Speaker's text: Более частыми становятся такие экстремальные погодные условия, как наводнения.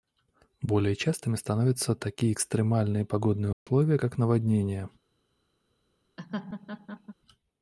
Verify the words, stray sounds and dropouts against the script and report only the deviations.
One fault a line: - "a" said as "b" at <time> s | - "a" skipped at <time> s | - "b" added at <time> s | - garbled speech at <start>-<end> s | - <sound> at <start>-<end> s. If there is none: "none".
- dropout at 3.5-3.7 s
- laugh at 6.2-7.1 s